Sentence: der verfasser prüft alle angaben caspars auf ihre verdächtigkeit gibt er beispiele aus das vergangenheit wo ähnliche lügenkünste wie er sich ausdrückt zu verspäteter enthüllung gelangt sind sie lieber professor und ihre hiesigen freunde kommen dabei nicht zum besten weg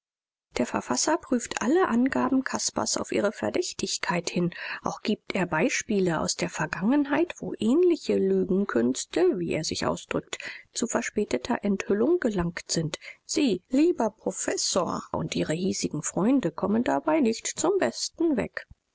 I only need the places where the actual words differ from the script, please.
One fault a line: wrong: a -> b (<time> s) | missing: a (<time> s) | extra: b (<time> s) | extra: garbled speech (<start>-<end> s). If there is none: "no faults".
extra: hin auch (4.3 s)
wrong: das -> der (6.3 s)